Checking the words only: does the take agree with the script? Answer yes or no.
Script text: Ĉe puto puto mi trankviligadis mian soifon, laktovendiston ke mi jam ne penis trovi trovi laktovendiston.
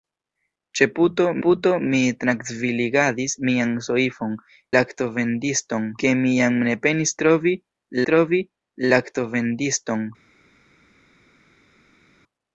yes